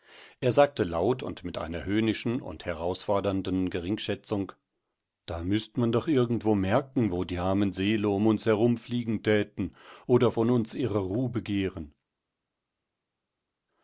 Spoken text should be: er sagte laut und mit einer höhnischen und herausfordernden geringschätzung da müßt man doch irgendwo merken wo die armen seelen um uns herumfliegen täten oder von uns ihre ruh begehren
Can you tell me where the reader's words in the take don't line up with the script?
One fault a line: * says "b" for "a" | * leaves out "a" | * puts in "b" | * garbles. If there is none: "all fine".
all fine